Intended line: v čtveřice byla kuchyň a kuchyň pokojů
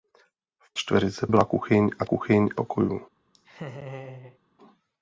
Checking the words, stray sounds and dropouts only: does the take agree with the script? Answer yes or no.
no